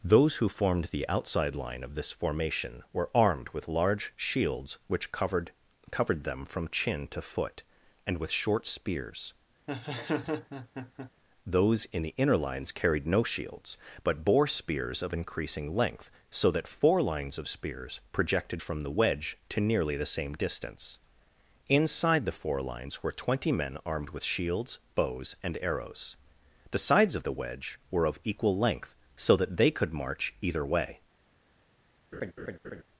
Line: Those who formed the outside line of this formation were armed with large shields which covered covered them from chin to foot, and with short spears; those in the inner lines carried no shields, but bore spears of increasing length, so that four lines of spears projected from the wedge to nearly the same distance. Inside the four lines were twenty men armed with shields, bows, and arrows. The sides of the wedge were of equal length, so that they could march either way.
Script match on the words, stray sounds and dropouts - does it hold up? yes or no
no